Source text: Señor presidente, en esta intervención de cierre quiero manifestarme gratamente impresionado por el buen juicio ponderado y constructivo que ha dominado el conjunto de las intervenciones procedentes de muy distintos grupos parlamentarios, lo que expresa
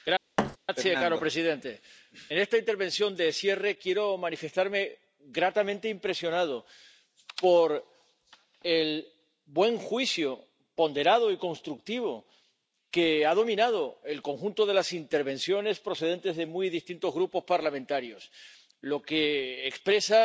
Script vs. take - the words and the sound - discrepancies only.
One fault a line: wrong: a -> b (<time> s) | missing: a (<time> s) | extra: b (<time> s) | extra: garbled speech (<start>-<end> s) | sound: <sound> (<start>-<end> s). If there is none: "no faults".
sound: thud (0.4-0.6 s)